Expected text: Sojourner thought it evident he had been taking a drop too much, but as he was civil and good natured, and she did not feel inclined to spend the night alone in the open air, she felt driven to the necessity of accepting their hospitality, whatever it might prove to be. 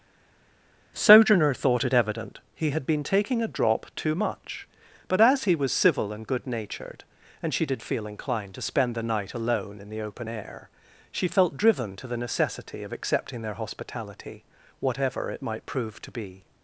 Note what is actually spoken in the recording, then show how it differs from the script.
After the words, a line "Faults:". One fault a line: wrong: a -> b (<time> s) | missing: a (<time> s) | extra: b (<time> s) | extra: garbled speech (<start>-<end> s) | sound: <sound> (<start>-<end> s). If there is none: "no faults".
Sojourner thought it evident he had been taking a drop too much, but as he was civil and good natured, and she did feel inclined to spend the night alone in the open air, she felt driven to the necessity of accepting their hospitality, whatever it might prove to be.
Faults:
missing: not (7.8 s)